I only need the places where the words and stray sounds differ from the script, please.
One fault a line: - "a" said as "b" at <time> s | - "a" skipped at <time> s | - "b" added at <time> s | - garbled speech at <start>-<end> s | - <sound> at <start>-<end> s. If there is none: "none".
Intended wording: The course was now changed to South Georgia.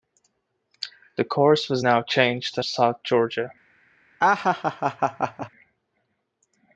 - laugh at 4.2-5.5 s